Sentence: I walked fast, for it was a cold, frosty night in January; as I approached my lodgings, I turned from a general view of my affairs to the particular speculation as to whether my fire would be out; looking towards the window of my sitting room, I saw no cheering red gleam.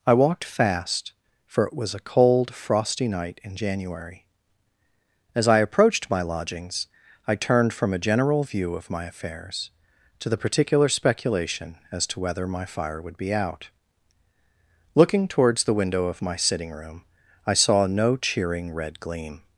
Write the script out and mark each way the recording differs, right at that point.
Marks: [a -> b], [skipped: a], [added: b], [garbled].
I walked fast, for it was a cold, frosty night in January; as I approached my lodgings, I turned from a general view of my affairs to the particular speculation as to whether my fire would be out; looking towards the window of my sitting room, I saw no cheering red gleam.